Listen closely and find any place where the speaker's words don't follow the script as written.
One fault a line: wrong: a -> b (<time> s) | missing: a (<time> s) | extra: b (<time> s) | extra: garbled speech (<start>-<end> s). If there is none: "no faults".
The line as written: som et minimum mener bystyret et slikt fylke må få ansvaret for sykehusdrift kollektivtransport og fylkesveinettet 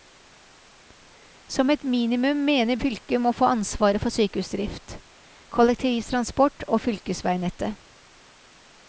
missing: bystyret et slikt (2.8 s)